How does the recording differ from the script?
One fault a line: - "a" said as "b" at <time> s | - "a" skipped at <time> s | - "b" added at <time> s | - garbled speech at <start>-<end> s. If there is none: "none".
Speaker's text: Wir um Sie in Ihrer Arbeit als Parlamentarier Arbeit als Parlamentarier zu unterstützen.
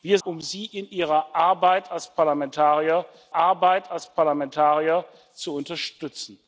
none